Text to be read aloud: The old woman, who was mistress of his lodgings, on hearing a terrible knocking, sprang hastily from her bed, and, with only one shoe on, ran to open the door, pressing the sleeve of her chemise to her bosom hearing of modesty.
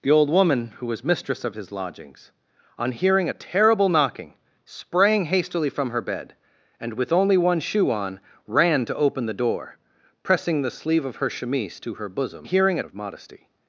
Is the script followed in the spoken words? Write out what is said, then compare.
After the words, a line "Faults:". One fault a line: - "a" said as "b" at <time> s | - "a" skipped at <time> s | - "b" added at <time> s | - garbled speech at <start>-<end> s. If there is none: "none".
The old woman, who was mistress of his lodgings, on hearing a terrible knocking, sprang hastily from her bed, and, with only one shoe on, ran to open the door, pressing the sleeve of her chemise to her bosom hearing of modesty.
Faults:
none